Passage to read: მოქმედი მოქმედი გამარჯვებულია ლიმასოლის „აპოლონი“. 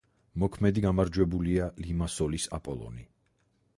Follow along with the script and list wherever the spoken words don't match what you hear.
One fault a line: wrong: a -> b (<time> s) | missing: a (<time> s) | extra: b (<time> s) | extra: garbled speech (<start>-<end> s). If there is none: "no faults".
missing: მოქმედი (0.8 s)